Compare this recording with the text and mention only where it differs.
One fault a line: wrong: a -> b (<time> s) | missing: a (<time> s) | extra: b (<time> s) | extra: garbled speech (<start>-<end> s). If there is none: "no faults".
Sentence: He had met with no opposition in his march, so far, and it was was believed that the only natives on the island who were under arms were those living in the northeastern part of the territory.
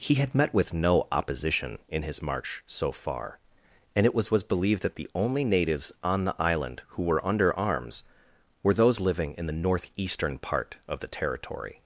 no faults